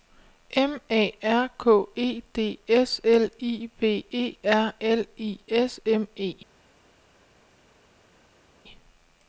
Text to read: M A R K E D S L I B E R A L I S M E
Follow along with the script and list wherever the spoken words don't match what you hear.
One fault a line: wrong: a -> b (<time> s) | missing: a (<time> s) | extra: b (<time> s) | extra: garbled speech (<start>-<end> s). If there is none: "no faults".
missing: A (4.7 s)